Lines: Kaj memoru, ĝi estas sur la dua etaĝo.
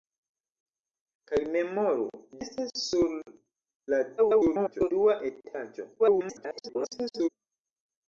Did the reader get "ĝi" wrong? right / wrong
wrong